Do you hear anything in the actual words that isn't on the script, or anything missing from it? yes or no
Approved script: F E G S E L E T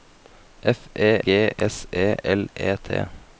no